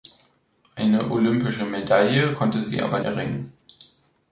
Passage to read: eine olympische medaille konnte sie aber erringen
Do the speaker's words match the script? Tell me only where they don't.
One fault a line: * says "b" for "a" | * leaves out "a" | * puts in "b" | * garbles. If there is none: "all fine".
all fine